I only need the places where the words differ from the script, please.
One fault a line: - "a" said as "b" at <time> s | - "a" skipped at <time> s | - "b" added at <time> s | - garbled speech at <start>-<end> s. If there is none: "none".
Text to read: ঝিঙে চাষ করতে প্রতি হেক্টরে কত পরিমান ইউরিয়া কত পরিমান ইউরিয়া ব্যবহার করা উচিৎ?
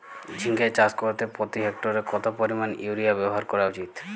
- "কত পরিমান ইউরিয়া" skipped at 3.1 s